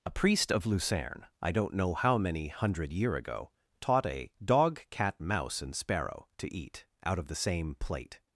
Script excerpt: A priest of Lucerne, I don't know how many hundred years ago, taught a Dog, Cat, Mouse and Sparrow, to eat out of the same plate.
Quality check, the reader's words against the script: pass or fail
fail